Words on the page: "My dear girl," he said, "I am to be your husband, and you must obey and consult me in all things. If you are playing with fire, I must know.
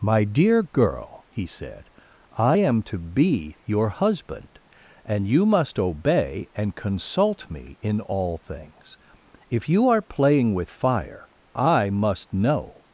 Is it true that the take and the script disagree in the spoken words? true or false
false